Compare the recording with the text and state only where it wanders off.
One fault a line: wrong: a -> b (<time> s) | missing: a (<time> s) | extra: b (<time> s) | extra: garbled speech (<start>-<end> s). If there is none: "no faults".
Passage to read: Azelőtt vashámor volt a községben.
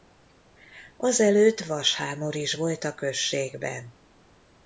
extra: is (2.4 s)